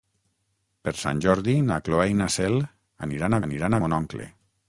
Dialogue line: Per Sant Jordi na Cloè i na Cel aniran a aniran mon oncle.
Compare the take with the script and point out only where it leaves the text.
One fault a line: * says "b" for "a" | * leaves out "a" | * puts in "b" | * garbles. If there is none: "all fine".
all fine